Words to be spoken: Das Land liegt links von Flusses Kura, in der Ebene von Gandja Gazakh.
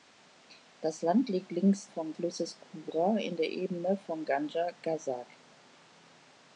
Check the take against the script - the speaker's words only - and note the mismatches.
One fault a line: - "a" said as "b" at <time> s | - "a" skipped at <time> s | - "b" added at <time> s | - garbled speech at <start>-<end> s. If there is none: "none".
none